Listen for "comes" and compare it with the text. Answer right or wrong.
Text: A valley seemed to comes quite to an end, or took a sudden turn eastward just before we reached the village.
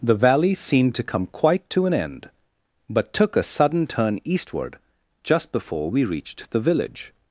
wrong